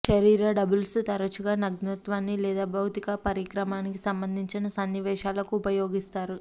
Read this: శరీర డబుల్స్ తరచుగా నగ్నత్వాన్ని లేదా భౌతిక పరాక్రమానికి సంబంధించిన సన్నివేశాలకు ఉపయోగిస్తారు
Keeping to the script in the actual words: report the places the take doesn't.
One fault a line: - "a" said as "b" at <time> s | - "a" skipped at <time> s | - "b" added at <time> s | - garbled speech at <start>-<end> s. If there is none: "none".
none